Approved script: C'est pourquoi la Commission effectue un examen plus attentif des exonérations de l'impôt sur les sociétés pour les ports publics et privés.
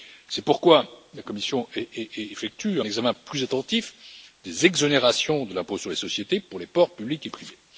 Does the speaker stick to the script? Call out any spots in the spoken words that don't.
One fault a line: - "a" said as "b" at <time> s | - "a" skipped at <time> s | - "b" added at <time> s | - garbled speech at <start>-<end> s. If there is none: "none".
- "un" skipped at 2.8 s